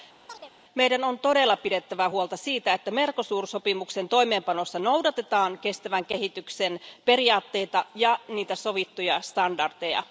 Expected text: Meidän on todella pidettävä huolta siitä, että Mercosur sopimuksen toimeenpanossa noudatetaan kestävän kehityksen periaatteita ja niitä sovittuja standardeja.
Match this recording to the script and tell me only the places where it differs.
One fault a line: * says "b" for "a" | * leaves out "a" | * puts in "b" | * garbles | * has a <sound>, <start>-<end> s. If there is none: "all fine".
* has a chirp, 0.3-0.5 s